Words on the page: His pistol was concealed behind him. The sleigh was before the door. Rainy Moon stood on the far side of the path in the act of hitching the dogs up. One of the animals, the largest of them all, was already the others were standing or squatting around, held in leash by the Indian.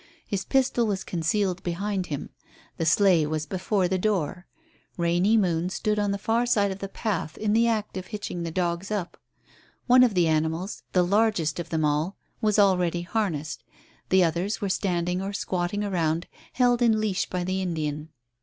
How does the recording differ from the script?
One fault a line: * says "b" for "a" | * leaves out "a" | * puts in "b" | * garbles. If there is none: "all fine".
* puts in "harnessed"